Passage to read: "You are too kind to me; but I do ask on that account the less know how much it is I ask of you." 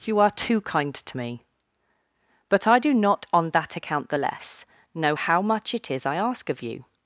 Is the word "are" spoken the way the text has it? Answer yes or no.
yes